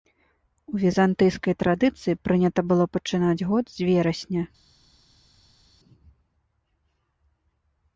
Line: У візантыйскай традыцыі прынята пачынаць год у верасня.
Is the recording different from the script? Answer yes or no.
yes